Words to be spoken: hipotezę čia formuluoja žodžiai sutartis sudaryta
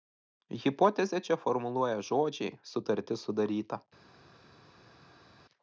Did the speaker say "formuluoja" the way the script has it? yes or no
yes